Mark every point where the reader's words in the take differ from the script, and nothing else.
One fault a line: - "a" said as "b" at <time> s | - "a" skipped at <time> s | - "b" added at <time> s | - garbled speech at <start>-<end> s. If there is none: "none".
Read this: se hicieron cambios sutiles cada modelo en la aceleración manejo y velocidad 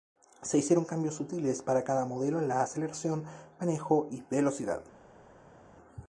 - "para" added at 1.6 s